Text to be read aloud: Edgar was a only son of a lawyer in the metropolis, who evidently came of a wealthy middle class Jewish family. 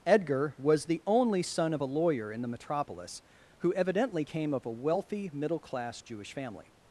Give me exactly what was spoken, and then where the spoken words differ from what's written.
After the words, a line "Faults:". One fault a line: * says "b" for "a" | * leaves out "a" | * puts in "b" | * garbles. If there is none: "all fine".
Edgar was the only son of a lawyer in the metropolis, who evidently came of a wealthy middle class Jewish family.
Faults:
* says "the" for "a"